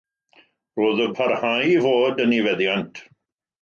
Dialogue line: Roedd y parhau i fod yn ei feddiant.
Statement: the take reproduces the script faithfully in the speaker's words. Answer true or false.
true